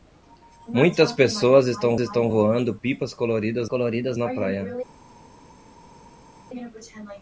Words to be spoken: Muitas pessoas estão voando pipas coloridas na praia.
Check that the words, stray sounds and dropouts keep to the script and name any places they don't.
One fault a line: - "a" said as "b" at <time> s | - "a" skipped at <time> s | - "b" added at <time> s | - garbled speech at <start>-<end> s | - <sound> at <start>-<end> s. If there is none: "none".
- "estão" added at 2.0 s
- "coloridas" added at 3.6 s